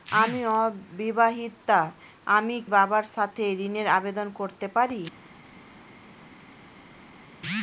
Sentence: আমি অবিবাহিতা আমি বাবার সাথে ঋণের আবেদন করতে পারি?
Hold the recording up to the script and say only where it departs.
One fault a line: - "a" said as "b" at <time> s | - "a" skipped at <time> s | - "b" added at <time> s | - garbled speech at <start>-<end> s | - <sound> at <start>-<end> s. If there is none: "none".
none